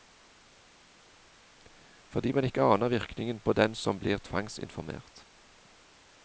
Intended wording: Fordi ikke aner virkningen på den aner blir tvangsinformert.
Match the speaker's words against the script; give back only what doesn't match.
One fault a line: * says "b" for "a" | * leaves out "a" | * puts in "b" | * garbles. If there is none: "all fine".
* puts in "man"
* says "som" for "aner"